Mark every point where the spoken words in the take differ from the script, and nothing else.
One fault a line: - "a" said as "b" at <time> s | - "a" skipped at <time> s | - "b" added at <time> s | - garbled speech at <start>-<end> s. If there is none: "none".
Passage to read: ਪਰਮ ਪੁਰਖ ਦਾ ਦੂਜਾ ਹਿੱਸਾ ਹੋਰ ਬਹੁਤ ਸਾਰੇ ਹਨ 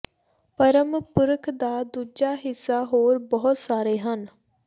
none